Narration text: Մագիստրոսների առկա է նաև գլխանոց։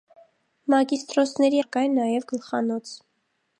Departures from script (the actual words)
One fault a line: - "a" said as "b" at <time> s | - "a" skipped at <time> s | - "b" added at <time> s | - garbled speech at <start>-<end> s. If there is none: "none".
none